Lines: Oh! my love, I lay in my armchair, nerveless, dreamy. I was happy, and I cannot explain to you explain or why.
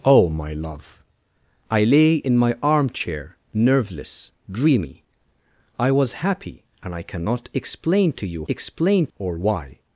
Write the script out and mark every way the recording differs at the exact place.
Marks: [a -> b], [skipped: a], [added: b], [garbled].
Oh! my love, I lay in my armchair, nerveless, dreamy. I was happy, and I cannot explain to you explain or why.